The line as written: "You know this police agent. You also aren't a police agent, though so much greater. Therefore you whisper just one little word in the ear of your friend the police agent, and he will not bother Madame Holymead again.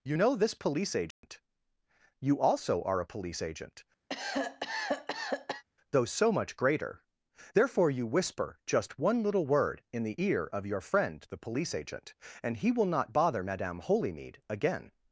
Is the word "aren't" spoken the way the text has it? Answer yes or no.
no